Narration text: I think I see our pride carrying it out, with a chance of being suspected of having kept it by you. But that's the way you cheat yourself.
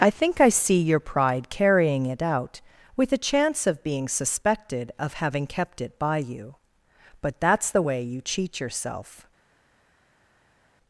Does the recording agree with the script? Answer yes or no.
no